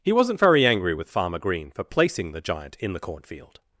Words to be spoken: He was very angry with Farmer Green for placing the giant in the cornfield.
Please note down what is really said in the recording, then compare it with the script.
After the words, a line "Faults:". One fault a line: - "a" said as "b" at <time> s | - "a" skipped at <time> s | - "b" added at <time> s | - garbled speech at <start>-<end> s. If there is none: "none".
He wasn't very angry with Farmer Green for placing the giant in the cornfield.
Faults:
- "was" said as "wasn't" at 0.1 s